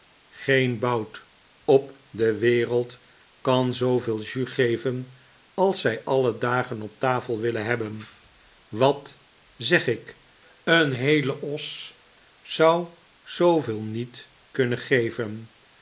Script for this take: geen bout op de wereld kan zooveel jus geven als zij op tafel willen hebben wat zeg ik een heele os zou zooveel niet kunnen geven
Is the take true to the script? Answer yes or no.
no